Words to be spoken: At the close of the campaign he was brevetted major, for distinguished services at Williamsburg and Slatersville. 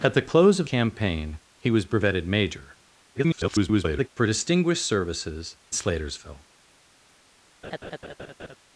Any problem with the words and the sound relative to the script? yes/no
yes